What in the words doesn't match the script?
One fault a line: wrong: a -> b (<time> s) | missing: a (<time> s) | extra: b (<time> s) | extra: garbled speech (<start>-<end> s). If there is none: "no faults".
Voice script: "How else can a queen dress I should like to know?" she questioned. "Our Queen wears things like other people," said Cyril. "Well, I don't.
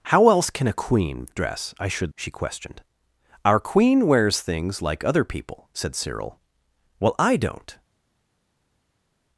missing: like to know (2.1 s)